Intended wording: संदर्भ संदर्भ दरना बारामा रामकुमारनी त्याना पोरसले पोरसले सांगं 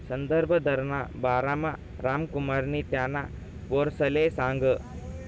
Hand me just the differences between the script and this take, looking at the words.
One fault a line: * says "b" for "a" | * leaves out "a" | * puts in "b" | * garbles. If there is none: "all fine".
* leaves out "संदर्भ"
* leaves out "पोरसले"